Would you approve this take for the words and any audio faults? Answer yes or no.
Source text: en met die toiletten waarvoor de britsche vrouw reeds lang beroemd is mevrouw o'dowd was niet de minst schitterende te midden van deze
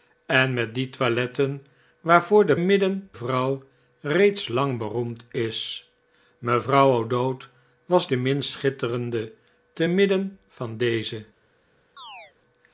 no